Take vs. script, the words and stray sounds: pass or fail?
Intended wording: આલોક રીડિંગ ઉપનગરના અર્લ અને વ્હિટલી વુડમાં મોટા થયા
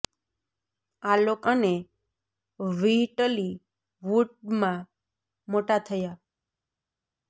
fail